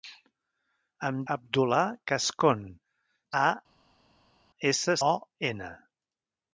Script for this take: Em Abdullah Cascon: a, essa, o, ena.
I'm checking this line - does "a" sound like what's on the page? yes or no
yes